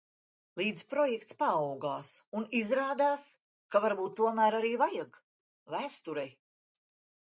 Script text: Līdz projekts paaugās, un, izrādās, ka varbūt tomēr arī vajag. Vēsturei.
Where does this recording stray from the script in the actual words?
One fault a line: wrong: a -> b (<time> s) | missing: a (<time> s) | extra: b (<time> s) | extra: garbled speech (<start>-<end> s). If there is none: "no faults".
no faults